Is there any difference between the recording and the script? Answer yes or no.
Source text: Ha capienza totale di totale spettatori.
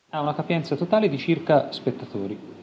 yes